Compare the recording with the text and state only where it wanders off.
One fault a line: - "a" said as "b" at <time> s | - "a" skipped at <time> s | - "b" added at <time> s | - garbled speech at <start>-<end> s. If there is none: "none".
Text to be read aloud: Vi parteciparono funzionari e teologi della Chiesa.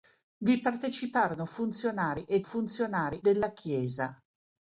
- "teologi" said as "funzionari" at 2.4 s